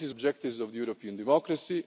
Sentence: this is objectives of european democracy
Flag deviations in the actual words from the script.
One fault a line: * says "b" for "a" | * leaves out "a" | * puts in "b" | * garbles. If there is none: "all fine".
all fine